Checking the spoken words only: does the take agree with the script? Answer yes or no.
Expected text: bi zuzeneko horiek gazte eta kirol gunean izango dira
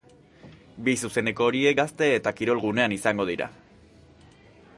yes